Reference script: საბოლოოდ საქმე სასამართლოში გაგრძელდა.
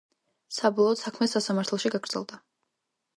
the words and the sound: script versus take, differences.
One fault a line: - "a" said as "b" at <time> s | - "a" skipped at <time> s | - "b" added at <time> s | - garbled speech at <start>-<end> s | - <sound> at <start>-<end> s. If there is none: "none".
none